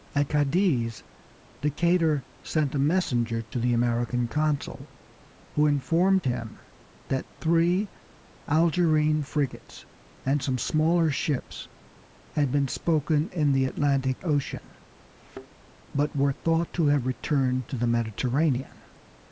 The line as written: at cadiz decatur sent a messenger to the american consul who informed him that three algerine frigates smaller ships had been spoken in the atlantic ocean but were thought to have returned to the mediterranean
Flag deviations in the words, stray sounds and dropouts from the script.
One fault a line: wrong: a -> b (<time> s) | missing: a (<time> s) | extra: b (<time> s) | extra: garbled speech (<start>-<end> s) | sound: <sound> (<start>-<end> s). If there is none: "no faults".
extra: and some (10.2 s)
sound: thud (15.2-15.5 s)